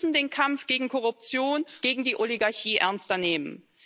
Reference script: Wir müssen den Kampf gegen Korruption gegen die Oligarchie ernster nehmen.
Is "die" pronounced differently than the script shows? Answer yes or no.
no